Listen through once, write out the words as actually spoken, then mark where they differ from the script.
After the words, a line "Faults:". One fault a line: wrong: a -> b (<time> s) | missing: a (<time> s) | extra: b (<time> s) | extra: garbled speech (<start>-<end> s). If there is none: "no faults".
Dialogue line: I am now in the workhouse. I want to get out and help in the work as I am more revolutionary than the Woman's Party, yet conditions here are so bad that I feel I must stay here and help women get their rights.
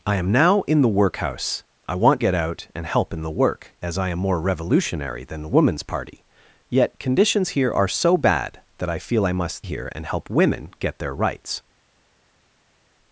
I am now in the workhouse. I want get out and help in the work as I am more revolutionary than the Woman's Party, yet conditions here are so bad that I feel I must here and help women get their rights.
Faults:
missing: to (2.2 s)
missing: stay (9.7 s)